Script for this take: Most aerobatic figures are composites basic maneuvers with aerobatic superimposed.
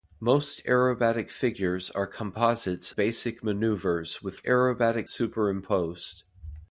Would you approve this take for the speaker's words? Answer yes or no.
yes